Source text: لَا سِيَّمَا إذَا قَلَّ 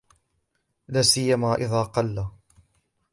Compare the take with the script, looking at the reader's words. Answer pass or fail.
pass